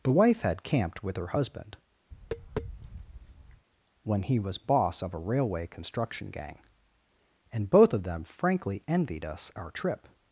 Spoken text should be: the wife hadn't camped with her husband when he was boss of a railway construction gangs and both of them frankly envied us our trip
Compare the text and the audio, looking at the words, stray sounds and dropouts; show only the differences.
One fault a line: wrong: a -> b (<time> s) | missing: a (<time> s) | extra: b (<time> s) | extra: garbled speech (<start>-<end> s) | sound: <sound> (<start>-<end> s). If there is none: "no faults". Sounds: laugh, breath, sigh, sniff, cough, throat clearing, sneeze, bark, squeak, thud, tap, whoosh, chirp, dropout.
wrong: hadn't -> had (0.4 s)
sound: tap (2.1-3.7 s)
wrong: gangs -> gang (6.3 s)